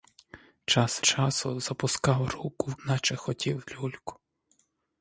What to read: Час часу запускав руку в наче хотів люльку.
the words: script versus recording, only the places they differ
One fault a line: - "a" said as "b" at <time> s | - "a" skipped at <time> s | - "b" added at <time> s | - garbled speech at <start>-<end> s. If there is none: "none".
none